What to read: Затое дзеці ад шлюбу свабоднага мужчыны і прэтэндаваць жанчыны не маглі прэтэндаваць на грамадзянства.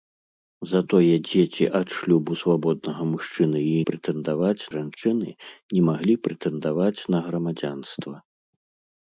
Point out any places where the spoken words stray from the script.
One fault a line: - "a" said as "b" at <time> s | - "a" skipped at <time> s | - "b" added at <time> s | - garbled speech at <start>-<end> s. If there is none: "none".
none